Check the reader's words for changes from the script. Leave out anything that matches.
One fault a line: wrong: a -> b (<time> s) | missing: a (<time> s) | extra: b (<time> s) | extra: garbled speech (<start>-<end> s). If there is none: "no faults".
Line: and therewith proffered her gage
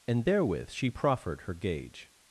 extra: she (0.7 s)